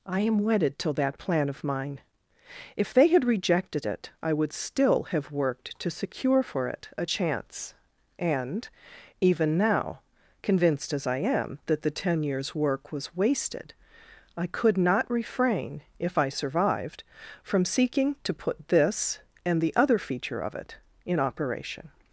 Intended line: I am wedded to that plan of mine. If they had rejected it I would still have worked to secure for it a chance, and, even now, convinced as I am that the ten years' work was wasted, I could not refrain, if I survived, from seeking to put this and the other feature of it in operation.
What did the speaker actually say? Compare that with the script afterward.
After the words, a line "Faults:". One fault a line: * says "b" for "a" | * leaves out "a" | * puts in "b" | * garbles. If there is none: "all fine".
I am wedded to that plan of mine. If they had rejected it I would still have worked to secure for it a chance, and, even now, convinced as I am that the ten years' work was wasted, I could not refrain, if I survived, from seeking to put this and the other feature of it in operation.
Faults:
all fine